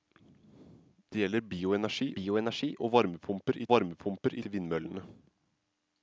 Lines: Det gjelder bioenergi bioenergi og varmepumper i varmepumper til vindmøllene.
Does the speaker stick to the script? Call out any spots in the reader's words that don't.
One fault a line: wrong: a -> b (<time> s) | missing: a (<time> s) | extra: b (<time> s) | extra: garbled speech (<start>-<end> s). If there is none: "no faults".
no faults